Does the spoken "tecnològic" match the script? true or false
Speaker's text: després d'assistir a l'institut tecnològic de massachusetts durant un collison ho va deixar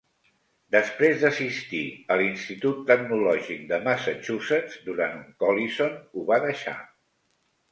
true